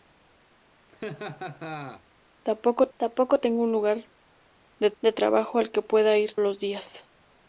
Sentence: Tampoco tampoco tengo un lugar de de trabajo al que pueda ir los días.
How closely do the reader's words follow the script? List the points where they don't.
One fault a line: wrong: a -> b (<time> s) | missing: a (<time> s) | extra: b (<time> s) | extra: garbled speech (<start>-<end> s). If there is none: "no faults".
no faults